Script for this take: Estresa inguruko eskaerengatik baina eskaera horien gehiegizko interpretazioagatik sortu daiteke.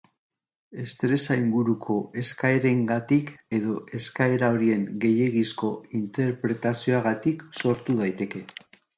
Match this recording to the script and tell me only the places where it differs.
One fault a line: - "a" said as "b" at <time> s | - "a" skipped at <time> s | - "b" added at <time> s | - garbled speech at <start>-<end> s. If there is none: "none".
- "baina" said as "edo" at 3.6 s